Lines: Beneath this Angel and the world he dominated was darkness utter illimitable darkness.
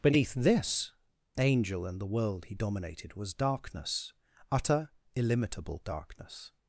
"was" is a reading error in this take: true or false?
false